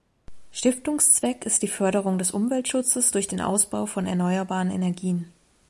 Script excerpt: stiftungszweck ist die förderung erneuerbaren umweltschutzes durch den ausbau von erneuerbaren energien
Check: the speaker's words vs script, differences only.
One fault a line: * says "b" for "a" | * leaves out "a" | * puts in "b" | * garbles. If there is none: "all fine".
* says "des" for "erneuerbaren"